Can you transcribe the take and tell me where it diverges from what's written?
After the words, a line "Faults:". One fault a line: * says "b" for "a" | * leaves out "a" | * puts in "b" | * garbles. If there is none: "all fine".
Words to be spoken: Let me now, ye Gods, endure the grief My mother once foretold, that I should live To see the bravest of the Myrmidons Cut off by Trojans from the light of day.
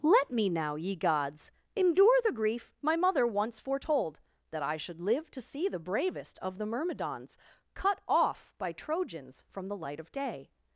Let me now, ye Gods, endure the grief My mother once foretold, that I should live To see the bravest of the Myrmidons Cut off by Trojans from the light of day.
Faults:
all fine